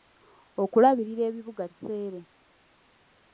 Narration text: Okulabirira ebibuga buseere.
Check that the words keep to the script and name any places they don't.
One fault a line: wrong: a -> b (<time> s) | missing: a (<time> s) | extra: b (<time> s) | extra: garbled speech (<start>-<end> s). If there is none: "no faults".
no faults